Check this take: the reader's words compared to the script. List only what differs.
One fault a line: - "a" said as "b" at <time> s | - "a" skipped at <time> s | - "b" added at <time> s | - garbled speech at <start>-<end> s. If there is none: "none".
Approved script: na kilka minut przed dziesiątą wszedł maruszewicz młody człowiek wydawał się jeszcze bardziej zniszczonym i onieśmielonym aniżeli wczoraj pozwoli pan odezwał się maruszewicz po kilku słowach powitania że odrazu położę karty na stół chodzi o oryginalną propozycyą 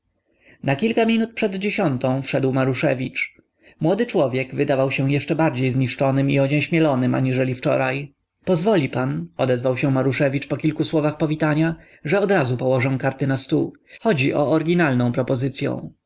none